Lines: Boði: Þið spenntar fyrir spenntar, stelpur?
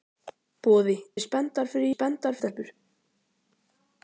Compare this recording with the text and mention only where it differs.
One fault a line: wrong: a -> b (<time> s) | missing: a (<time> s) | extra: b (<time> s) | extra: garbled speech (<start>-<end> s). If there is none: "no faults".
no faults